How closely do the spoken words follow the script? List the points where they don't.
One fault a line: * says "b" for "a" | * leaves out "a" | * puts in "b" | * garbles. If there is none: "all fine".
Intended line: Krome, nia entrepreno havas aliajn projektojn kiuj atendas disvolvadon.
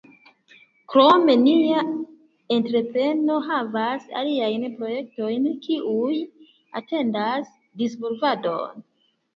all fine